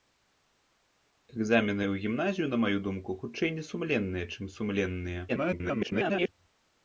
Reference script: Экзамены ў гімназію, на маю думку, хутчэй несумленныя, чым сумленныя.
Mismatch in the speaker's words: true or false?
true